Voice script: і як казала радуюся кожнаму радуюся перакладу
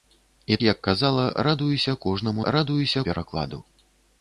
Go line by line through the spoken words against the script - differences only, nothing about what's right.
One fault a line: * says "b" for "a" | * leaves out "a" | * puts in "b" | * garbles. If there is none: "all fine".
all fine